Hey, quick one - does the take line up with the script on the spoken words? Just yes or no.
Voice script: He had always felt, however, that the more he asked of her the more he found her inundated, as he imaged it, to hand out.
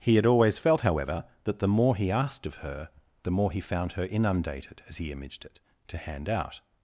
yes